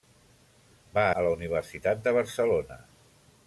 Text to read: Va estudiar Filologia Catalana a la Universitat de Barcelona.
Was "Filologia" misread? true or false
true